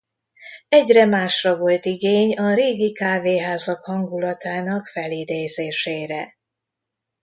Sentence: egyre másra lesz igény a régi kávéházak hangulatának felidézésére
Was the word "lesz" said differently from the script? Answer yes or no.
yes